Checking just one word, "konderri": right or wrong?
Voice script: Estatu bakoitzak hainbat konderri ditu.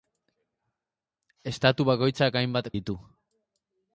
wrong